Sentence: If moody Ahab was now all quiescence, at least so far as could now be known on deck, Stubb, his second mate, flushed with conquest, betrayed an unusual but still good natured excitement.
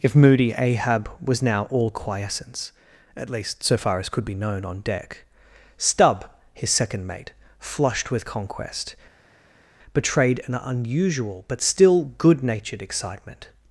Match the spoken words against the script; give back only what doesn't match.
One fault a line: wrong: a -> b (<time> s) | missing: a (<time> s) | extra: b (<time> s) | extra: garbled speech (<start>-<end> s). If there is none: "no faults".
missing: now (4.2 s)